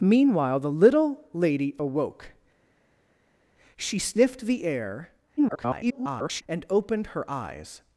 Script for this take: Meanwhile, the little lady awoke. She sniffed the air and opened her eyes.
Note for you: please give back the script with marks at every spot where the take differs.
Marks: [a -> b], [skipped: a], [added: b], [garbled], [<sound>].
Meanwhile, the little lady awoke. She sniffed the air [garbled] and opened her eyes.